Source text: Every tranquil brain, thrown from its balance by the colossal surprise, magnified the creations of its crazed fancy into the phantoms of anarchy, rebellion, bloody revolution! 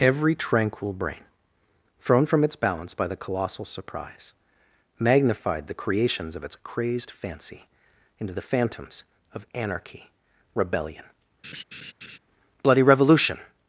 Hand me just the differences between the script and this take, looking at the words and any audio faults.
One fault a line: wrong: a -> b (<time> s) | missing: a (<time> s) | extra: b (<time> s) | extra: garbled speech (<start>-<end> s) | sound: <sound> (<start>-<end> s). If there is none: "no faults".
sound: laugh (11.4-12.2 s)